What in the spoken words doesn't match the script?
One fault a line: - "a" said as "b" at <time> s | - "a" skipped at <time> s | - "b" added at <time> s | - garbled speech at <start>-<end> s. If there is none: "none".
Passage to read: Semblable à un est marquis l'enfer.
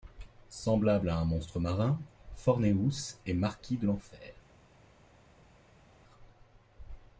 - "monstre marin Forneus" added at 1.2 s
- "de" added at 3.8 s